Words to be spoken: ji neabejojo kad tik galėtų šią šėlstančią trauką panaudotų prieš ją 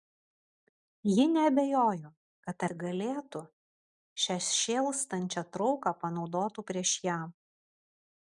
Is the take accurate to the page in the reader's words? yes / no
yes